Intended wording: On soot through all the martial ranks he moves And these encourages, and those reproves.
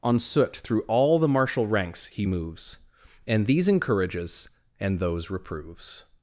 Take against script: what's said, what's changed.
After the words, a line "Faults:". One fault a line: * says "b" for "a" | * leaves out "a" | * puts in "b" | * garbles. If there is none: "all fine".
On soot through all the martial ranks he moves And these encourages, and those reproves.
Faults:
all fine